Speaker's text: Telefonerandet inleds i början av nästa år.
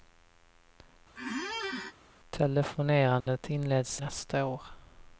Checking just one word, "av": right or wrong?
wrong